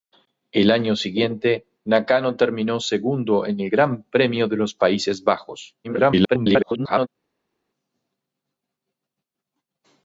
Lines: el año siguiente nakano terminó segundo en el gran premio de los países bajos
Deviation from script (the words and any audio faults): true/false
true